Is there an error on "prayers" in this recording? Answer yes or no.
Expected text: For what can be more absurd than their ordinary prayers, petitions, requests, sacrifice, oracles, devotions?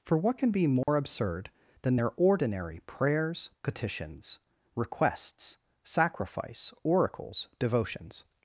no